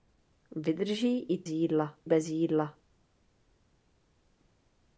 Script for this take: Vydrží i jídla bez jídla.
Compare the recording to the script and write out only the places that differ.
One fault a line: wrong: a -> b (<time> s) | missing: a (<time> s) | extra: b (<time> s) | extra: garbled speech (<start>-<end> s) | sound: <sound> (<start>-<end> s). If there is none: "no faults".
no faults